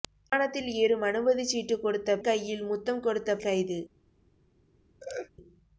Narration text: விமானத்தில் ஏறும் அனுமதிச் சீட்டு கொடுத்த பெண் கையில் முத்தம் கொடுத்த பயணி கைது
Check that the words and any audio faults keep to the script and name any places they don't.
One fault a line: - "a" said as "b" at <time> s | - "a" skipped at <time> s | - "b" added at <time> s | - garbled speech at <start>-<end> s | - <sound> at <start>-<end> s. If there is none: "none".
- "பெண்" skipped at 2.2 s
- "பயணி" skipped at 3.4 s
- laugh at 5.0-5.3 s